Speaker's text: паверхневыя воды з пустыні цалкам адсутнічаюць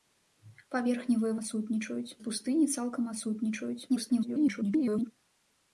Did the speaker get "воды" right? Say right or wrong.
wrong